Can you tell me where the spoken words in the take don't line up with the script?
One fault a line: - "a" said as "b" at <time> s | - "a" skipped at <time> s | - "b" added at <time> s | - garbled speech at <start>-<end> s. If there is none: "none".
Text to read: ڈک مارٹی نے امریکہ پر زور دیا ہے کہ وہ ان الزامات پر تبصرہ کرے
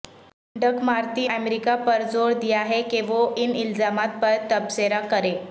- "نے" skipped at 1.3 s